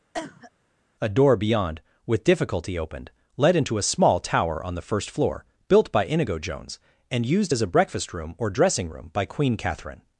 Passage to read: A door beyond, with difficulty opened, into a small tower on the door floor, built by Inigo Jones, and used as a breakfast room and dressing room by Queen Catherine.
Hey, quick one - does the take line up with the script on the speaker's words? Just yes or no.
no